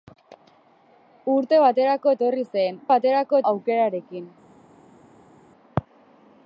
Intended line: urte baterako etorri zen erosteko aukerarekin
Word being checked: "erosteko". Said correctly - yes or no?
no